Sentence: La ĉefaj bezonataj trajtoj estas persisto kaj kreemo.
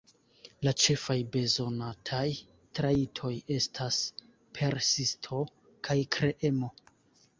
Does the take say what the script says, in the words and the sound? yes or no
yes